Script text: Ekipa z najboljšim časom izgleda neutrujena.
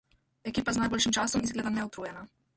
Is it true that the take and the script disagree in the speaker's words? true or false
false